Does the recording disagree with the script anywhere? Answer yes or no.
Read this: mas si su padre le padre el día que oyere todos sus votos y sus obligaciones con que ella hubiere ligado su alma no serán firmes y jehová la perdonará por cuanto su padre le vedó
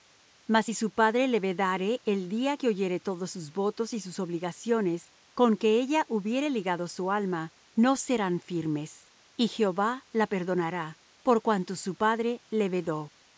yes